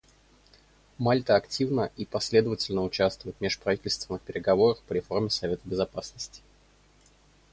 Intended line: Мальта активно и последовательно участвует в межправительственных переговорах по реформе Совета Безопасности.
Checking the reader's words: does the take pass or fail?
pass